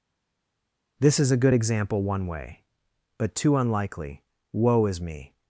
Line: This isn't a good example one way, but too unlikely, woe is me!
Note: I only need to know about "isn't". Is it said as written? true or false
false